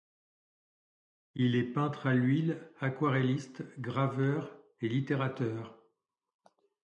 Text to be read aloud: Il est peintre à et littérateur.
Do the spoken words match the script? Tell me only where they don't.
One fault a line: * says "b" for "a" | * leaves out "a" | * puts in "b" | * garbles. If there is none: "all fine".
* puts in "l'huile aquarelliste graveur"